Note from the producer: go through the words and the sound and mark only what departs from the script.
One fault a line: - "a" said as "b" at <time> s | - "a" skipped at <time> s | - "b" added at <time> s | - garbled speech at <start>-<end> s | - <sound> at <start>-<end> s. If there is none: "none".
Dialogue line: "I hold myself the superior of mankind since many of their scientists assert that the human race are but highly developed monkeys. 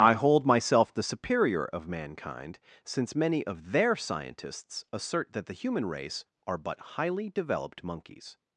none